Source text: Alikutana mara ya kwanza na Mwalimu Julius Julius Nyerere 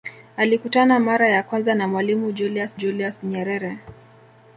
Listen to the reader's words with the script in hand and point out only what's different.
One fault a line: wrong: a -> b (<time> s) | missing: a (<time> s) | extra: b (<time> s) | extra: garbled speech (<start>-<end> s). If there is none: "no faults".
no faults